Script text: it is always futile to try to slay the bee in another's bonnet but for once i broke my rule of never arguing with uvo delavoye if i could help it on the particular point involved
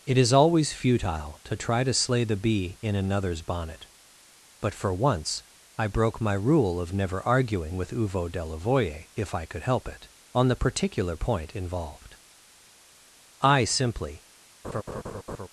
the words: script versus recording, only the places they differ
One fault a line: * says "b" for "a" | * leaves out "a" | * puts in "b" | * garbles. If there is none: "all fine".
* puts in "i simply"